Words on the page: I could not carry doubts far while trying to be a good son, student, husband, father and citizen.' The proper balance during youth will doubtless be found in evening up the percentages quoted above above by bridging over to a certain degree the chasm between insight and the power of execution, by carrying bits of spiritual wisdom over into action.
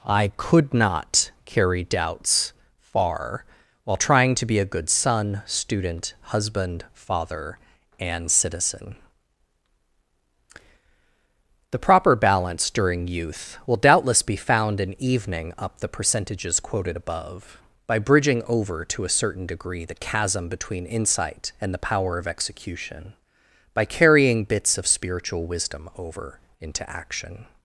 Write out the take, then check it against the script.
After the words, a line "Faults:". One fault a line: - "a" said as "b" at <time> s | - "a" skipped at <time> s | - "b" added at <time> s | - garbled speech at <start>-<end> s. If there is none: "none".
I could not carry doubts far while trying to be a good son, student, husband, father and citizen.' The proper balance during youth will doubtless be found in evening up the percentages quoted above by bridging over to a certain degree the chasm between insight and the power of execution, by carrying bits of spiritual wisdom over into action.
Faults:
- "above" skipped at 17.6 s